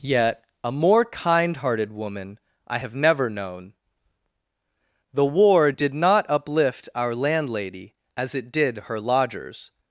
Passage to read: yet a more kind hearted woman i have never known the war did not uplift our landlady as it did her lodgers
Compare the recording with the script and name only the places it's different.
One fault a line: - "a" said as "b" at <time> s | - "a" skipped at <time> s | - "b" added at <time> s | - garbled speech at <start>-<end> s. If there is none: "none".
none